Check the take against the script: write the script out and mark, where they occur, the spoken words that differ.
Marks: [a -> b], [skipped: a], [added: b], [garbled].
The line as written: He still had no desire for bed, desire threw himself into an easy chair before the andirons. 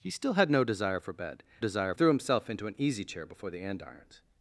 He still had no desire for bed, desire threw himself into an easy chair before the andirons.